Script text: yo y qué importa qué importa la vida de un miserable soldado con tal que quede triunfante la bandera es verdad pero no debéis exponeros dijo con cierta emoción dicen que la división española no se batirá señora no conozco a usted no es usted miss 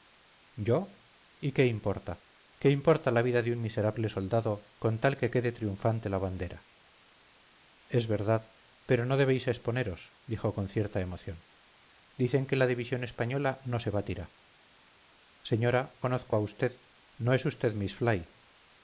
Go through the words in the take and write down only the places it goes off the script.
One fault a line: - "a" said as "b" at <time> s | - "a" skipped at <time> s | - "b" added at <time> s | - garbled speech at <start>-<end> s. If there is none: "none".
- "no" skipped at 16.0 s